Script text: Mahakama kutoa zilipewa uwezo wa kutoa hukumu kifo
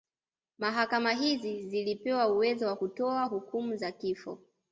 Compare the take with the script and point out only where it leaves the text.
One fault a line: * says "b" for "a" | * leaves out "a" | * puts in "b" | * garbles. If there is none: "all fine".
* says "hizi" for "kutoa"
* puts in "za"